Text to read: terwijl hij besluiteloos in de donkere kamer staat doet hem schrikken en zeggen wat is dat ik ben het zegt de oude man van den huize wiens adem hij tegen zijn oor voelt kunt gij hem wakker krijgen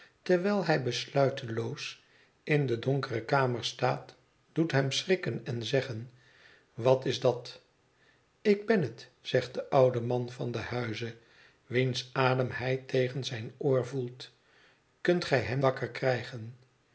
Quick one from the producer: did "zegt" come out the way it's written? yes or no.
yes